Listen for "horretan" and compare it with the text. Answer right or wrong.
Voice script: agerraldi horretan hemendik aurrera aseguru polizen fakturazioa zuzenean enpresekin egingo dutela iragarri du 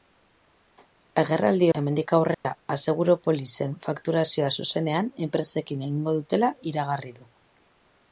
wrong